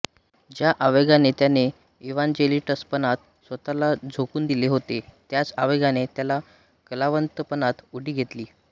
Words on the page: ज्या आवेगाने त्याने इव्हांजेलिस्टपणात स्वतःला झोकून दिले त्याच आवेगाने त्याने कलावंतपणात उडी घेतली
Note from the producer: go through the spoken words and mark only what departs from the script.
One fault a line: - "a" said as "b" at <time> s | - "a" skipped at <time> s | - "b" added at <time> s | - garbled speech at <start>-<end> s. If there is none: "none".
- "होते" added at 4.7 s